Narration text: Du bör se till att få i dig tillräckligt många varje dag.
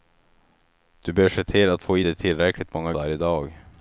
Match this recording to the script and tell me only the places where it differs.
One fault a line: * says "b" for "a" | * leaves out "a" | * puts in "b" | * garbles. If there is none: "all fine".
all fine